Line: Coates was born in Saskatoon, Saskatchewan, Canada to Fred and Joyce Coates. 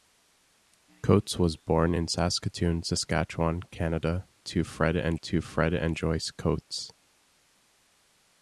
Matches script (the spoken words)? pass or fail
fail